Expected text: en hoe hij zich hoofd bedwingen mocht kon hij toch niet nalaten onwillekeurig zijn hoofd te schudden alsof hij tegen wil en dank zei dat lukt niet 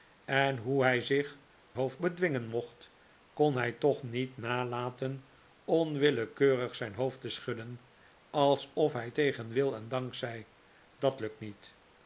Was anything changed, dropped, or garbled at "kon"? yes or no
no